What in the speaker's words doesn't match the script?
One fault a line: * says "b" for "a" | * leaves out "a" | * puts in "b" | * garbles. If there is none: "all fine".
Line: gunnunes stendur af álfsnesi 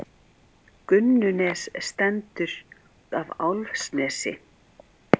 all fine